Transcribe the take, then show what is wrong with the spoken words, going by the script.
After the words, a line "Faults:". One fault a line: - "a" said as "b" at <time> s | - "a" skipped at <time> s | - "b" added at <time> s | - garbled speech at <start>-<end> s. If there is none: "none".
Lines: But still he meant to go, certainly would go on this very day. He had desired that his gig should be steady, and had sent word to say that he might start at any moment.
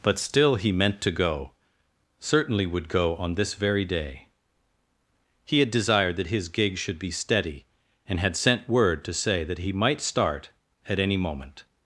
But still he meant to go, certainly would go on this very day. He had desired that his gig should be steady, and had sent word to say that he might start at any moment.
Faults:
none